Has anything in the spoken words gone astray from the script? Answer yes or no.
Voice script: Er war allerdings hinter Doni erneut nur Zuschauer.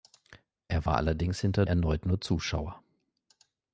yes